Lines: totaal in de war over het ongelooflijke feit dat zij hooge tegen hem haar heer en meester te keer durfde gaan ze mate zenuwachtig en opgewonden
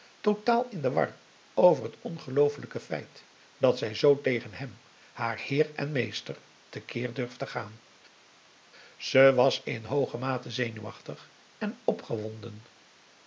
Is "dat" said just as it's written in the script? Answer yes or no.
yes